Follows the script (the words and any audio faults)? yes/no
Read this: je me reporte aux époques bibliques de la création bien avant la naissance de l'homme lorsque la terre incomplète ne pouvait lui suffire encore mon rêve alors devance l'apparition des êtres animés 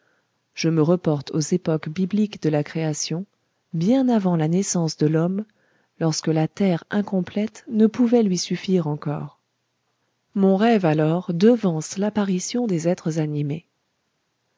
yes